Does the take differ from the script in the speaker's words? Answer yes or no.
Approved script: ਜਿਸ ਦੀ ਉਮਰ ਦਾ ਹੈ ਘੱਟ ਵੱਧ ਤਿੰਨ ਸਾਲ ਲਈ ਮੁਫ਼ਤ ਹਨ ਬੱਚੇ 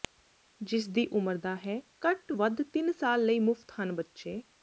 no